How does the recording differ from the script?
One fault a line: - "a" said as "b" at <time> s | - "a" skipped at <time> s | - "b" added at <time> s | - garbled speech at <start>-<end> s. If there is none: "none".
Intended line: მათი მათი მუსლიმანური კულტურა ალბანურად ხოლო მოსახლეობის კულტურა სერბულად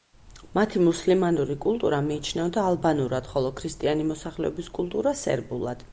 - "მათი" skipped at 0.8 s
- "მიიჩნეოდა" added at 2.1 s
- "ქრისტიანი" added at 3.6 s